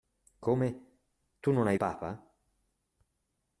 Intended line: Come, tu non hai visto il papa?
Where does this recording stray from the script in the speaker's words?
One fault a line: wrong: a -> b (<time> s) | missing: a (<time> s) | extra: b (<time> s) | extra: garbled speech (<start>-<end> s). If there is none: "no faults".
missing: visto il (1.8 s)